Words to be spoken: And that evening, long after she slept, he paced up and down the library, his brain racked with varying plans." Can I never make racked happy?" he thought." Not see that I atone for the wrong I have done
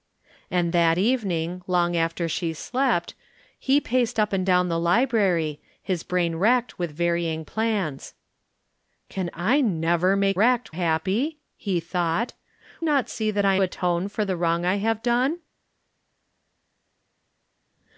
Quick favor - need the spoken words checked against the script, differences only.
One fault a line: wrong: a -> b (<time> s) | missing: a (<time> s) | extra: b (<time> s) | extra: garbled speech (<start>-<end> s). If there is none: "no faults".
no faults